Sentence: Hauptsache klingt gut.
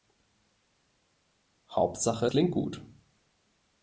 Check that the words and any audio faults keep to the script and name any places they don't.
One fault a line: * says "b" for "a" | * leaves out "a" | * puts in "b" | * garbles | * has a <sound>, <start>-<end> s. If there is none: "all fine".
all fine